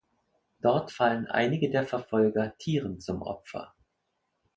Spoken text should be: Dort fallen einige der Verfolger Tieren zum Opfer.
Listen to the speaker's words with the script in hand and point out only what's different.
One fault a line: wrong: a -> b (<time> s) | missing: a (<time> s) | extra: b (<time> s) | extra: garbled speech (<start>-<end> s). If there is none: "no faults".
no faults